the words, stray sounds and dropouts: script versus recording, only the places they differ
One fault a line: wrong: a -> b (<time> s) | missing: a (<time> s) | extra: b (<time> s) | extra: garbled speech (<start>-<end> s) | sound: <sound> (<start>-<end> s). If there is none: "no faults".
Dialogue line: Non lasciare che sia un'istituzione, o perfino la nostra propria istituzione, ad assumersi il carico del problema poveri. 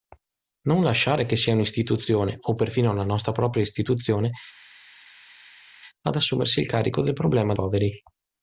no faults